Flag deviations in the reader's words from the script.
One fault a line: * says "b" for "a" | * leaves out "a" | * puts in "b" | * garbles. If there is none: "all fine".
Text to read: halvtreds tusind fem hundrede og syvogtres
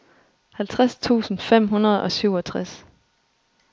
all fine